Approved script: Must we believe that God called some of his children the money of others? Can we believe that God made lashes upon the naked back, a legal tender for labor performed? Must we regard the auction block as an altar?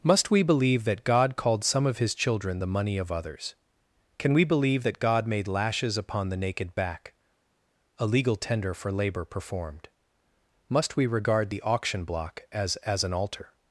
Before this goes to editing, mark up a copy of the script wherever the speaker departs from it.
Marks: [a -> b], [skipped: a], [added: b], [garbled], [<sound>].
Must we believe that God called some of his children the money of others? Can we believe that God made lashes upon the naked back, a legal tender for labor performed? Must we regard the auction block as [added: as] an altar?